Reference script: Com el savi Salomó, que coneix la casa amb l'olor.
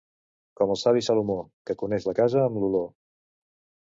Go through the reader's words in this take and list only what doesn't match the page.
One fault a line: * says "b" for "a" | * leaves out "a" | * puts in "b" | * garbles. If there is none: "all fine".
all fine